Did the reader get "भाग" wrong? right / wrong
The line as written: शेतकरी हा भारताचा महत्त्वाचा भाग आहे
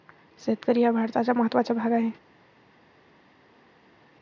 right